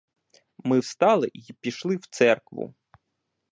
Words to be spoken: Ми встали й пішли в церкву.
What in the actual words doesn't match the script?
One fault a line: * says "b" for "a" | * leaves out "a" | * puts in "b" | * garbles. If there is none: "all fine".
all fine